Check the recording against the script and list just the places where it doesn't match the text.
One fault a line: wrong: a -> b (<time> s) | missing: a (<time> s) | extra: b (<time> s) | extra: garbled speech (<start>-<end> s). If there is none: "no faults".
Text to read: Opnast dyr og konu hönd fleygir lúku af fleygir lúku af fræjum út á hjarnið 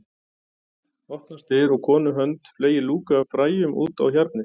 missing: fleygir lúku af (3.3 s)